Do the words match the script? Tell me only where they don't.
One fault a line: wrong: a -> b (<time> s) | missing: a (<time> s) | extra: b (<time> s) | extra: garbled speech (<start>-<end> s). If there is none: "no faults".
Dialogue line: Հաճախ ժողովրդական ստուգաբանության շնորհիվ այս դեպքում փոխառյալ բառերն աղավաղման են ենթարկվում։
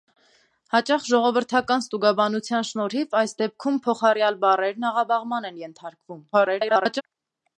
extra: garbled speech (6.3-7.0 s)